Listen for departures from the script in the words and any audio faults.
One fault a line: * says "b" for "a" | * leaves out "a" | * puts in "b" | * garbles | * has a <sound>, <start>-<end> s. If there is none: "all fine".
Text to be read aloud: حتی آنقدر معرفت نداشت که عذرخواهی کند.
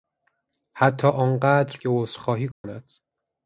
* leaves out "معرفت نداشت"
* has a dropout, 2.5-2.6 s